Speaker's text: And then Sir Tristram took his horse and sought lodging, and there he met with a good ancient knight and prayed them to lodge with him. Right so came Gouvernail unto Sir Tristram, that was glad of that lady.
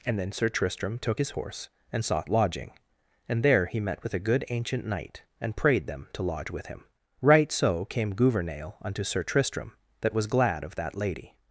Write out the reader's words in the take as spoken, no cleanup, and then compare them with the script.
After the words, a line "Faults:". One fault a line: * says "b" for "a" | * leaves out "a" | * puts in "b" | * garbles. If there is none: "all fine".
And then Sir Tristram took his horse and sought lodging, and there he met with a good ancient knight and prayed them to lodge with him. Right so came Gouvernail unto Sir Tristram, that was glad of that lady.
Faults:
all fine